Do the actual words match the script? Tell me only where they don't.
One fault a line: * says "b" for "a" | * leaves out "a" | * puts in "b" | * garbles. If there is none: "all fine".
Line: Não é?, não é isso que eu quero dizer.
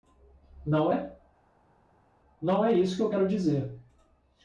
all fine